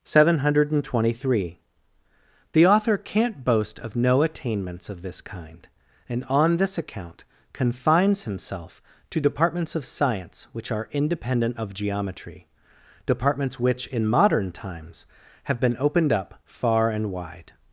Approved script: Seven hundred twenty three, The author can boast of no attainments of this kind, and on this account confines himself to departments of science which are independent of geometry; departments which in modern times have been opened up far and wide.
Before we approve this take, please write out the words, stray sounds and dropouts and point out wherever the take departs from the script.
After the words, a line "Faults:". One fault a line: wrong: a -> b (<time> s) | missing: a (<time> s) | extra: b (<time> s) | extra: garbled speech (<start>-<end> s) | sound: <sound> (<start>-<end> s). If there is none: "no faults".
Seven hundred twenty three, The author can't boast of no attainments of this kind, and on this account confines himself to departments of science which are independent of geometry; departments which in modern times have been opened up far and wide.
Faults:
wrong: can -> can't (3.0 s)